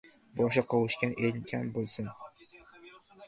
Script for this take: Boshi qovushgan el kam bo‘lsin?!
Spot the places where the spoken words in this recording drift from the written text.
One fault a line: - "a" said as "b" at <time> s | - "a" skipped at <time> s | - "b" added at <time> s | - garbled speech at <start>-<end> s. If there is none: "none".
none